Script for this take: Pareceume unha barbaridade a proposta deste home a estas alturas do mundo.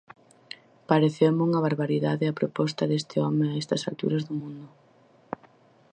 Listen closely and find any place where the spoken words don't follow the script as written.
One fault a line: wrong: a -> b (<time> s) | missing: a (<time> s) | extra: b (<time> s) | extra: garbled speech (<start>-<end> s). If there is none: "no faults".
no faults